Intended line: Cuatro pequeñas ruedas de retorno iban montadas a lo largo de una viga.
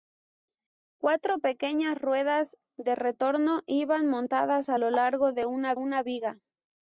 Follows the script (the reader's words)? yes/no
no